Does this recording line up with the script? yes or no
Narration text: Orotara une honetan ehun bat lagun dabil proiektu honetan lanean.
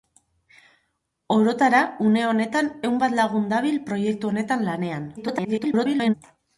no